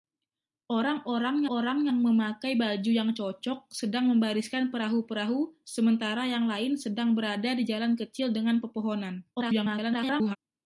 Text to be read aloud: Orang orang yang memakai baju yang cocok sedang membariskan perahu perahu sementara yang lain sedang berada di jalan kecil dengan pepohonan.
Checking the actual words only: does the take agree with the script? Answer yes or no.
no